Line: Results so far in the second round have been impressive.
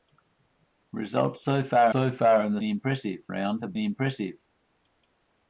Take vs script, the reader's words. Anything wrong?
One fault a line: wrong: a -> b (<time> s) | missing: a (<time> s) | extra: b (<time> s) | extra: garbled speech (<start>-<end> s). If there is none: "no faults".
extra: so far (1.9 s)
wrong: second -> impressive (2.6 s)
missing: been (3.7 s)